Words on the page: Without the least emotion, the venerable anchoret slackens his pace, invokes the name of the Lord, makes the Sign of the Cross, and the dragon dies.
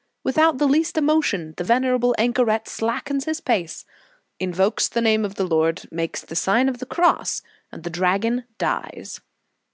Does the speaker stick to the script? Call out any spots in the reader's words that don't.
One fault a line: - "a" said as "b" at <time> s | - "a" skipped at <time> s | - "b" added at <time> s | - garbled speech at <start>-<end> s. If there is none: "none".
none